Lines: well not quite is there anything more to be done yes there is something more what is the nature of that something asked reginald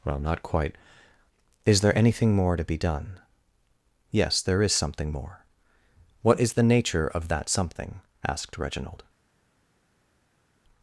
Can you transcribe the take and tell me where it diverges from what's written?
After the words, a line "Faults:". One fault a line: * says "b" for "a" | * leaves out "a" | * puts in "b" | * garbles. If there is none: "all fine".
well not quite is there anything more to be done yes there is something more what is the nature of that something asked reginald
Faults:
all fine